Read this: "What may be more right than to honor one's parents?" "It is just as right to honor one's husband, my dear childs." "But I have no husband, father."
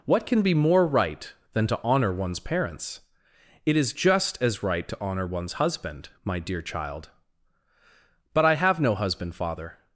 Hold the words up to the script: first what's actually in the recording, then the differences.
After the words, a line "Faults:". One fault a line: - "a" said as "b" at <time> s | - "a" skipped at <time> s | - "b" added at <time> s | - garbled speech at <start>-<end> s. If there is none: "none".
"What can be more right than to honor one's parents?" "It is just as right to honor one's husband, my dear child." "But I have no husband, father."
Faults:
- "may" said as "can" at 0.2 s
- "childs" said as "child" at 6.6 s